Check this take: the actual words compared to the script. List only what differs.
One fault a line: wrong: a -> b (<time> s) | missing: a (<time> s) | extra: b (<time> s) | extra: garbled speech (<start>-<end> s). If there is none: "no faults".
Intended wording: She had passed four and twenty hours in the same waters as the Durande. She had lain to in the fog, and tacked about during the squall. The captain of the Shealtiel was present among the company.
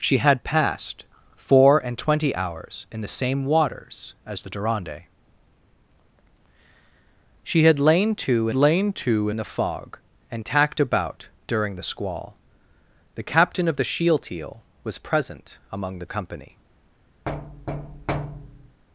extra: lain to (8.5 s)